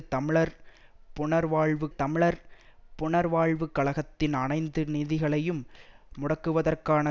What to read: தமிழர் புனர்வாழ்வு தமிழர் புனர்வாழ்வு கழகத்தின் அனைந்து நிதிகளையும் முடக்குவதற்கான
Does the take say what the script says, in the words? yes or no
yes